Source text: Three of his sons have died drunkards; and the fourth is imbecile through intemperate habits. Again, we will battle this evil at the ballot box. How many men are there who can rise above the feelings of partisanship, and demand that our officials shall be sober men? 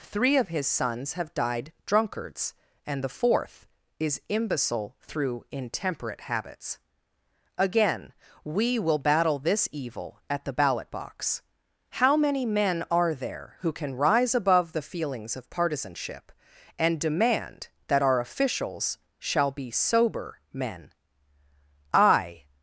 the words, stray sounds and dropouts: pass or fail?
fail